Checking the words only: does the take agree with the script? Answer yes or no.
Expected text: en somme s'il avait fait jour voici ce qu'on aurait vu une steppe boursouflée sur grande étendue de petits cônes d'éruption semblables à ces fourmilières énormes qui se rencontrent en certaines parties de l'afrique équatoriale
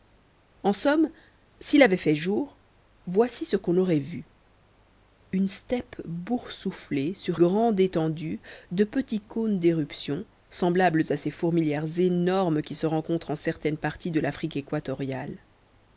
yes